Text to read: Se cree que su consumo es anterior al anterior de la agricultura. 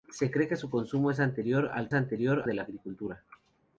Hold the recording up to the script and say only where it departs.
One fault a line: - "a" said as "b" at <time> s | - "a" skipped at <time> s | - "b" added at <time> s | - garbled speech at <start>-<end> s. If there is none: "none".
none